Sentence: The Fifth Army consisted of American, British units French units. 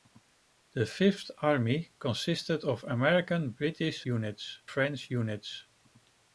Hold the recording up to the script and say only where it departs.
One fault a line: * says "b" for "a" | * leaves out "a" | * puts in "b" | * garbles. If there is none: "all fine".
all fine